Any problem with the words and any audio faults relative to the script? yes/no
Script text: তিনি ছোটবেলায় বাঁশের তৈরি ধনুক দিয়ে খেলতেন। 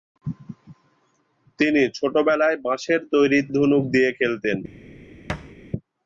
yes